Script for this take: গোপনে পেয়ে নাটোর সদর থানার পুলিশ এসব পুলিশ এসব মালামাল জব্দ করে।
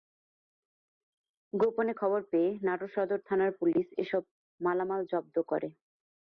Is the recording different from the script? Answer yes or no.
yes